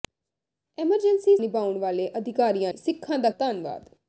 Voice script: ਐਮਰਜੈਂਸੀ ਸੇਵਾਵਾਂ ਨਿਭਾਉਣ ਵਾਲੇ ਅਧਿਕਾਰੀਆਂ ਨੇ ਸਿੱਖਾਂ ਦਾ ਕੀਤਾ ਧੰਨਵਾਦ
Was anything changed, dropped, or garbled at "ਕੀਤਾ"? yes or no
yes